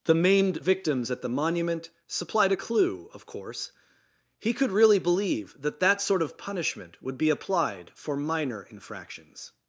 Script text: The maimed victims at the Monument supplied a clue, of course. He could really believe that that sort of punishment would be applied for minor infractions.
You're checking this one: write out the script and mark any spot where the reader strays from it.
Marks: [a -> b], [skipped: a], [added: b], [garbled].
The maimed victims at the Monument supplied a clue, of course. He could really believe that that sort of punishment would be applied for minor infractions.